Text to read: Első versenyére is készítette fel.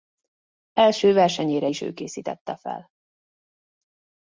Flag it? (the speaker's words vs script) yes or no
yes